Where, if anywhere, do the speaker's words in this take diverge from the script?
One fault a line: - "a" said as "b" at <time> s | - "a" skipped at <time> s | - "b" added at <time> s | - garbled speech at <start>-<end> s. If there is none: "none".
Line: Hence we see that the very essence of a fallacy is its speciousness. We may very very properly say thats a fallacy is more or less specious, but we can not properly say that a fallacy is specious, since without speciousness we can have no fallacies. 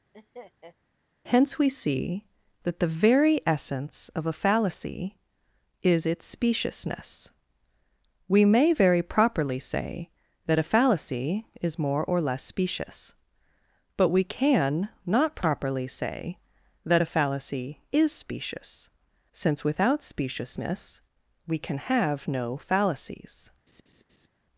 - "very" skipped at 9.0 s
- "thats" said as "that" at 10.5 s